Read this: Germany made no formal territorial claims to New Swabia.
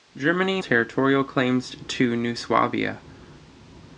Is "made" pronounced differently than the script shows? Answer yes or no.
yes